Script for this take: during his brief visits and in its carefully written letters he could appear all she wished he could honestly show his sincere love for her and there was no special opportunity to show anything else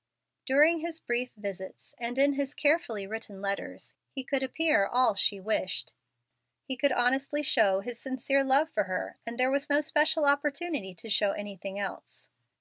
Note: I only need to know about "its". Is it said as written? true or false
false